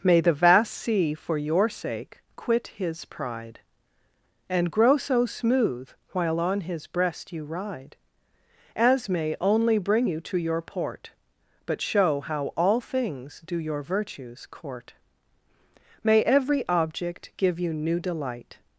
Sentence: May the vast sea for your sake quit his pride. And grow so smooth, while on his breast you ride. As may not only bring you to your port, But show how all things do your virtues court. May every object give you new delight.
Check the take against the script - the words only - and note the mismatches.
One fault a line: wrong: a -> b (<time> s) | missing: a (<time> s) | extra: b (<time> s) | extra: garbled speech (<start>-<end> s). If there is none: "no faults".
missing: not (9.3 s)